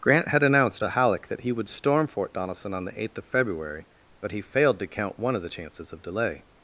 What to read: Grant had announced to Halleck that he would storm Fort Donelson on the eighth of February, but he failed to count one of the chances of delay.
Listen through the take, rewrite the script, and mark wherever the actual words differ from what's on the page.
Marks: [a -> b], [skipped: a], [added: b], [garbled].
Grant had announced to Halleck that he would storm Fort Donelson on the eighth of February, but he failed to count one of the chances of delay.